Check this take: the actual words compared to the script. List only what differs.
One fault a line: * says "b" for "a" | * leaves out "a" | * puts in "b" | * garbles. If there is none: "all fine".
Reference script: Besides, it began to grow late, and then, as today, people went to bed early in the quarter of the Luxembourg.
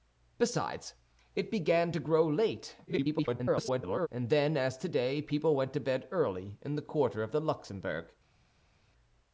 * garbles